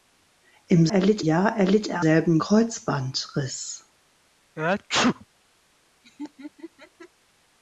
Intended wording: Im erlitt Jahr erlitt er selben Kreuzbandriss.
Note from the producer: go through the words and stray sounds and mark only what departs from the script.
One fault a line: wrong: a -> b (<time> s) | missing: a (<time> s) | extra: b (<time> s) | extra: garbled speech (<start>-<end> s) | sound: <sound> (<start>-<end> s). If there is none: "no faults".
sound: sneeze (4.6-5.3 s)
sound: laugh (6.0-7.1 s)